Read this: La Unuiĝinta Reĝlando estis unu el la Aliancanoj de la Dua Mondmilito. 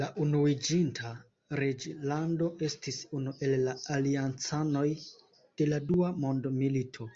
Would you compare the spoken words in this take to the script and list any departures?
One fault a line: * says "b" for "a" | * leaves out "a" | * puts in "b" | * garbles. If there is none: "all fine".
all fine